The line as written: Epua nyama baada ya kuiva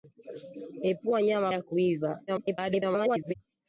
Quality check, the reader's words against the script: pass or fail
fail